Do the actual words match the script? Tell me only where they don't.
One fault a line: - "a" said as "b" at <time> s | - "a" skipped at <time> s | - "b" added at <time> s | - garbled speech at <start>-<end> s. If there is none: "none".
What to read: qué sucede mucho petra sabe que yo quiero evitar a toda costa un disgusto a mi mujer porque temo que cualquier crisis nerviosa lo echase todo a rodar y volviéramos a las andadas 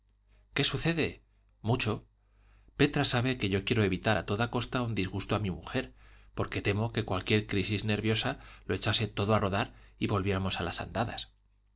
none